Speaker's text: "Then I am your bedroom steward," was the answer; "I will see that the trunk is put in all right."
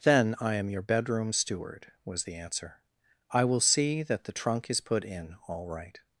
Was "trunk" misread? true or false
false